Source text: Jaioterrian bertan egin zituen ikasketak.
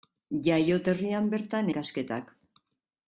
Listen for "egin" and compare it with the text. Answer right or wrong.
wrong